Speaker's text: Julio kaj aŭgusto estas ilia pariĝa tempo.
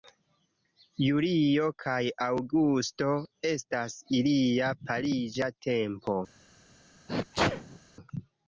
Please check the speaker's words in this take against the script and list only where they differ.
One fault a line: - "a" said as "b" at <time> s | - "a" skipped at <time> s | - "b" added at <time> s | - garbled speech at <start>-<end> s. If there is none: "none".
none